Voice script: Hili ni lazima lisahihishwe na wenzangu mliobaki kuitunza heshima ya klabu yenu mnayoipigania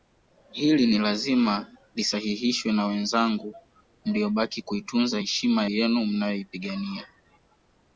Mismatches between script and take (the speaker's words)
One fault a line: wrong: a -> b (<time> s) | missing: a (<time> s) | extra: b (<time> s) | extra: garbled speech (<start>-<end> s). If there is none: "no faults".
missing: ya klabu (5.6 s)